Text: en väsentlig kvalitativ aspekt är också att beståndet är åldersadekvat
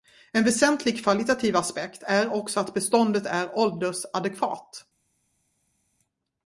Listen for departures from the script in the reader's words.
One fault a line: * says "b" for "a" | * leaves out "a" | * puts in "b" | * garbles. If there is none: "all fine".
all fine